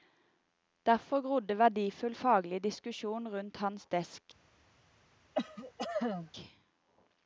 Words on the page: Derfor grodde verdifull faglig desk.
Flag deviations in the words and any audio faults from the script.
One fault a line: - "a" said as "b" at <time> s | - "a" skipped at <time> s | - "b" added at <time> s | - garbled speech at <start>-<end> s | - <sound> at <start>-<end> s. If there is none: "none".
- "diskusjon rundt hans" added at 2.6 s
- cough at 5.3-6.3 s